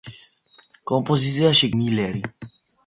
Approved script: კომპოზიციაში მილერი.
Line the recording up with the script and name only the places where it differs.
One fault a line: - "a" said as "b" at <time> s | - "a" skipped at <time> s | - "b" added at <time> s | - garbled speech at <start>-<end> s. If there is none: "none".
none